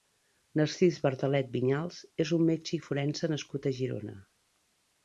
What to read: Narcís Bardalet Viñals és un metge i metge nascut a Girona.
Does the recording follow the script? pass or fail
fail